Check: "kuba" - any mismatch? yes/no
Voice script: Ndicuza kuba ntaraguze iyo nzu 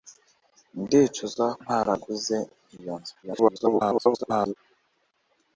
yes